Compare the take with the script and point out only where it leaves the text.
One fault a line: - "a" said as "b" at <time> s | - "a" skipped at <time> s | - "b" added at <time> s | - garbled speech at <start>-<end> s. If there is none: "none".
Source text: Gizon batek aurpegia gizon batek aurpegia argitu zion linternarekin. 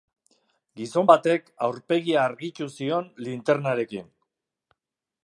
- "gizon batek aurpegia" skipped at 2.2 s